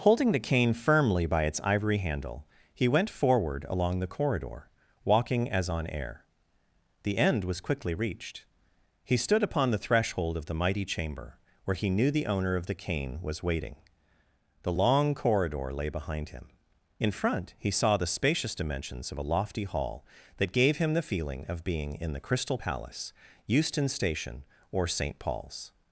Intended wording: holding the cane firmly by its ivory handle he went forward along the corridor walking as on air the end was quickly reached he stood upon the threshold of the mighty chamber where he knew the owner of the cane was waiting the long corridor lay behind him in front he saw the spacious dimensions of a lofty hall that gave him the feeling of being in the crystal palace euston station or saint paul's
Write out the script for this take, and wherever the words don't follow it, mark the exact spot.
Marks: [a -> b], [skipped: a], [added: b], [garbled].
holding the cane firmly by its ivory handle he went forward along the corridor walking as on air the end was quickly reached he stood upon the threshold of the mighty chamber where he knew the owner of the cane was waiting the long corridor lay behind him in front he saw the spacious dimensions of a lofty hall that gave him the feeling of being in the crystal palace euston station or saint paul's